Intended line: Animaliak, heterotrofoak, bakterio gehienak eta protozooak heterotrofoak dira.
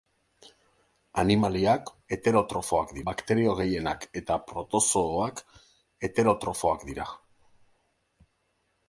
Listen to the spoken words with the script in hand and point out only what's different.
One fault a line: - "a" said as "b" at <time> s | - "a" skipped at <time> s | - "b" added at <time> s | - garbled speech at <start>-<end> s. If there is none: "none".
none